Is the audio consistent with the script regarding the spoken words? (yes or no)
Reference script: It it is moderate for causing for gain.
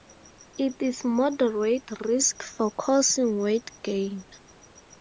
no